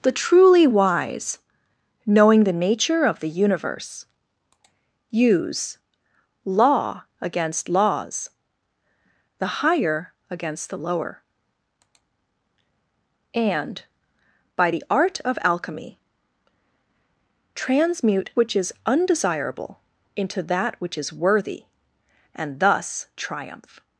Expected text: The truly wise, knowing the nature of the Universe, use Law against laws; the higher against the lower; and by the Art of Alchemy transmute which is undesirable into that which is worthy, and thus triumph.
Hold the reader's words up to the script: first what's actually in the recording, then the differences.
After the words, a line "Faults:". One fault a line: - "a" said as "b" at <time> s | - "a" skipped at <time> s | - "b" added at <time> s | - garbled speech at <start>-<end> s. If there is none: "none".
The truly wise, knowing the nature of the Universe, use Law against laws; the higher against the lower; and by the Art of Alchemy transmute which is undesirable into that which is worthy, and thus triumph.
Faults:
none